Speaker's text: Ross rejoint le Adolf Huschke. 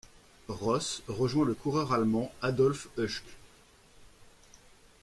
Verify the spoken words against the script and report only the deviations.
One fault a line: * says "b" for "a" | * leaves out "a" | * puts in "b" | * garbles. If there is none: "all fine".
* puts in "coureur allemand"